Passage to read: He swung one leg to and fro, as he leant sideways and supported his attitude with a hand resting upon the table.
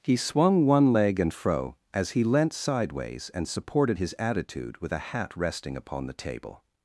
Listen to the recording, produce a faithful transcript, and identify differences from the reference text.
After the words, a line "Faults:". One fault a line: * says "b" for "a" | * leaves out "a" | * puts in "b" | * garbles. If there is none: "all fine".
He swung one leg and fro, as he leant sideways and supported his attitude with a hat resting upon the table.
Faults:
* leaves out "to"
* says "hat" for "hand"